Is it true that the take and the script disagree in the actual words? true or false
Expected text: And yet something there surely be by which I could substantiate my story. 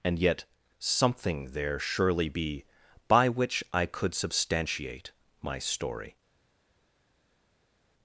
false